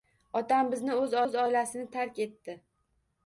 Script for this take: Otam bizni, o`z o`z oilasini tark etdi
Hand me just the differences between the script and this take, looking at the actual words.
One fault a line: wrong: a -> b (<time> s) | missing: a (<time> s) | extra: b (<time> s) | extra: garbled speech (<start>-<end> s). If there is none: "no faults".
no faults